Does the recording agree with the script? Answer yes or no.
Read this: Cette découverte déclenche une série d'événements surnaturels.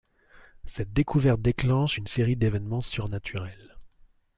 yes